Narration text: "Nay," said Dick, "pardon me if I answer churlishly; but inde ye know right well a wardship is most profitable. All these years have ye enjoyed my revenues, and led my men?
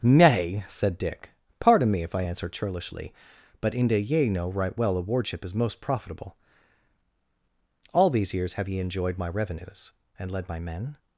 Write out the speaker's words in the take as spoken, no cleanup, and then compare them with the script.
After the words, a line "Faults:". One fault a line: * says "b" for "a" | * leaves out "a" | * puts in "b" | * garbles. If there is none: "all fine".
"Nay," said Dick, "pardon me if I answer churlishly; but inde ye know right well a wardship is most profitable. All these years have ye enjoyed my revenues, and led my men?
Faults:
all fine